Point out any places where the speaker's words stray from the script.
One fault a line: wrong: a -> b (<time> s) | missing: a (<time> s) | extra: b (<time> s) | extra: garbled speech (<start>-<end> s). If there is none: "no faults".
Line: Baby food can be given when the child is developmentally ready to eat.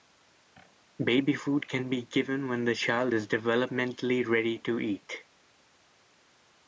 no faults